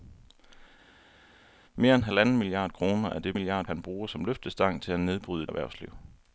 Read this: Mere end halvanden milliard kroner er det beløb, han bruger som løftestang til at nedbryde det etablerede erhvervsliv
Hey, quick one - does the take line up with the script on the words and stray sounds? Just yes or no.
no